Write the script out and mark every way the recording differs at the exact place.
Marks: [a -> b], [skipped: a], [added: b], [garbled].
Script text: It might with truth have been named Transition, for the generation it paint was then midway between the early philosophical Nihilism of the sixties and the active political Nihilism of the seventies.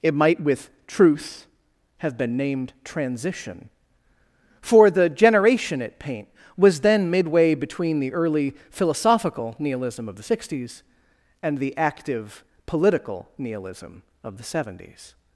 It might with truth have been named Transition, for the generation it paint was then midway between the early philosophical Nihilism of the sixties and the active political Nihilism of the seventies.